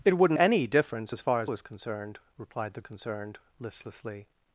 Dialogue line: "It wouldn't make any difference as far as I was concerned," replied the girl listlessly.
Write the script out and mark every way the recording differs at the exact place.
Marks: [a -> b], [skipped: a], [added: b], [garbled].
"It wouldn't [skipped: make] any difference as far as [skipped: I] was concerned," replied the [girl -> concerned] listlessly.